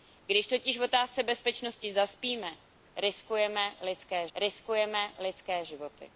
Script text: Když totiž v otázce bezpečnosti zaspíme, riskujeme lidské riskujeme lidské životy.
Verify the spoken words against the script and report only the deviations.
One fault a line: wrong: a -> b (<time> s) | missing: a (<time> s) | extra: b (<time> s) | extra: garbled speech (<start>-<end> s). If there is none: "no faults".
no faults